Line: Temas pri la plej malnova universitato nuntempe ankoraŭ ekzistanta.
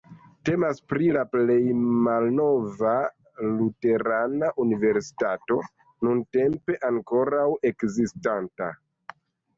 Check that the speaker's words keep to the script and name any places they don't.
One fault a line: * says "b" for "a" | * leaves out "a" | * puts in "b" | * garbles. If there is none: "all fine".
* puts in "luterana"